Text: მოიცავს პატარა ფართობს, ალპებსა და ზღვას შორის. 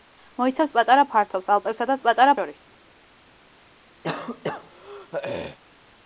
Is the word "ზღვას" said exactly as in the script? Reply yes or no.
no